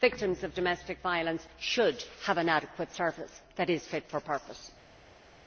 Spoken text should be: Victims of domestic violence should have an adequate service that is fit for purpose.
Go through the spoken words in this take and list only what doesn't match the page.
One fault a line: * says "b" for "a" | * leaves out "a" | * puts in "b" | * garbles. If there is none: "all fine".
all fine